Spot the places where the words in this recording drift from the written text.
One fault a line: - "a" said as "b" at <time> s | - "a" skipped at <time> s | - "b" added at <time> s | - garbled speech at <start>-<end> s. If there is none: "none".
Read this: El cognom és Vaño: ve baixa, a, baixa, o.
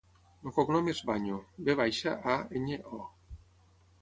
- "baixa" said as "enya" at 2.6 s